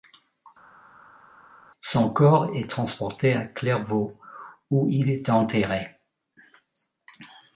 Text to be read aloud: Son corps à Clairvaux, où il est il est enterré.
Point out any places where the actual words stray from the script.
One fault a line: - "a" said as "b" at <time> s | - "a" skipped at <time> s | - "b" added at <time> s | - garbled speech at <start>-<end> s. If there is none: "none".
- "est transporté" added at 2.5 s
- "il est" skipped at 5.3 s